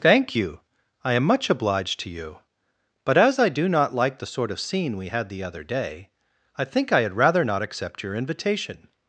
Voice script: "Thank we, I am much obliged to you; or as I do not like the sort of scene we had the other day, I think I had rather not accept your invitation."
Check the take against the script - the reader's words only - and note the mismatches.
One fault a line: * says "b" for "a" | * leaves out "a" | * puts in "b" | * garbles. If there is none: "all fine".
* says "you" for "we"
* says "but" for "or"